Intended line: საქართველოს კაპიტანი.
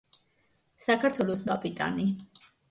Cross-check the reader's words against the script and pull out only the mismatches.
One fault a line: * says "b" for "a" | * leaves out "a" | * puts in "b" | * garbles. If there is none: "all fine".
all fine